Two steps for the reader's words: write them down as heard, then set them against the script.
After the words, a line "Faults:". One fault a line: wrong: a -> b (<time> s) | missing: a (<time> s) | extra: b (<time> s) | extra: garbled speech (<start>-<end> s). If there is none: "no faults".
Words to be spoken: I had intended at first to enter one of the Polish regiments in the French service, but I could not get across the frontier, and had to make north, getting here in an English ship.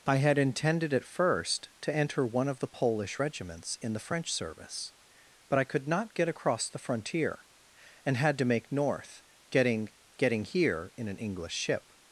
I had intended at first to enter one of the Polish regiments in the French service, but I could not get across the frontier, and had to make north, getting getting here in an English ship.
Faults:
extra: getting (10.2 s)